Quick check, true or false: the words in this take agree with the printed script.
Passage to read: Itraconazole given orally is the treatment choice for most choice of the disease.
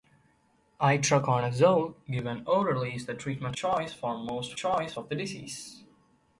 true